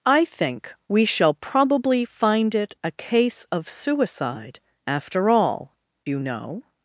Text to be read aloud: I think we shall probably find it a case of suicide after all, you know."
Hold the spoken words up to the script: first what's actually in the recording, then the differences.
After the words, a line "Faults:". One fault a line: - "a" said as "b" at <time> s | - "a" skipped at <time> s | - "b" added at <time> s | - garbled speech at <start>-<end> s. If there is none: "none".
I think we shall probably find it a case of suicide after all, you know."
Faults:
none